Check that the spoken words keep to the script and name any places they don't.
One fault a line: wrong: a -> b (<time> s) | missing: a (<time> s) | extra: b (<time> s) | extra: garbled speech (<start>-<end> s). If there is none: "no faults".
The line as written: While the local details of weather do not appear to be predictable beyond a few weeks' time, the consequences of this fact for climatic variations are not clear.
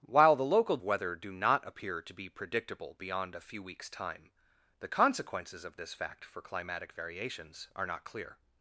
missing: details of (0.8 s)